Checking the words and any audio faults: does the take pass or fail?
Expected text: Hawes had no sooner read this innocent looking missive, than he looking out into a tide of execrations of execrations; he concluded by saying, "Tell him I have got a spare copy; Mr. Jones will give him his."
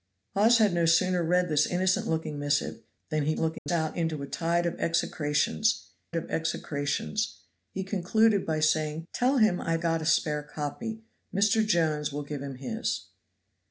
fail